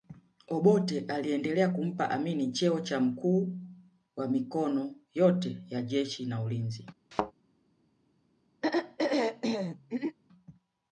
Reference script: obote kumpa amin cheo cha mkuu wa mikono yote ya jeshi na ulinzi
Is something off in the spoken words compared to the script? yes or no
yes